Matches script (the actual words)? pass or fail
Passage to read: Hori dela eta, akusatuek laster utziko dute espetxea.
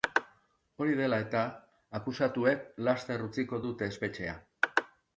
pass